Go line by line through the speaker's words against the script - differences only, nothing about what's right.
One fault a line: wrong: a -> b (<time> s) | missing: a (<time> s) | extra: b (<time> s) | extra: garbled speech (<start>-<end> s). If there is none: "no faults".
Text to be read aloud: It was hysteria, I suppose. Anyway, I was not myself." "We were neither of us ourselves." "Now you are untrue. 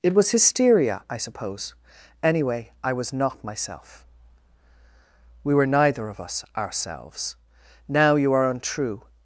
no faults